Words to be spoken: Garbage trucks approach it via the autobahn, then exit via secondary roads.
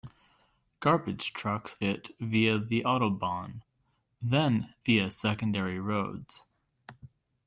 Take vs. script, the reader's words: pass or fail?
fail